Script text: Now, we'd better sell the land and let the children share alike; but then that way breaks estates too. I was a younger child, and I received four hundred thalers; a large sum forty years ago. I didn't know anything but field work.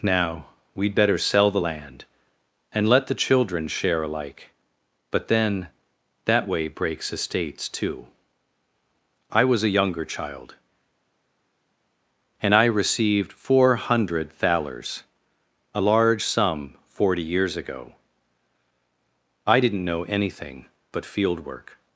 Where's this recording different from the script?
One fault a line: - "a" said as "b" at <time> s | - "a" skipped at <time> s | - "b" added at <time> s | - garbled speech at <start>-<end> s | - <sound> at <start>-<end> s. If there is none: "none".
none